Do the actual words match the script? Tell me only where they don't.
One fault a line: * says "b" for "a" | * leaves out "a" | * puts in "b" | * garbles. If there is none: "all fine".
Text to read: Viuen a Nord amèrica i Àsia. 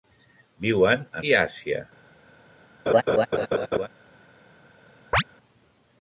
* leaves out "Nord amèrica"